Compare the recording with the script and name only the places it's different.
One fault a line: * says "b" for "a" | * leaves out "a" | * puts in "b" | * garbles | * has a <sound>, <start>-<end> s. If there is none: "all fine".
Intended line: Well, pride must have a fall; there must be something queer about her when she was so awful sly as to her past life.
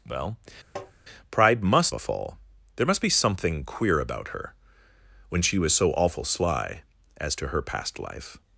* has a tap, 0.8-0.9 s
* leaves out "have"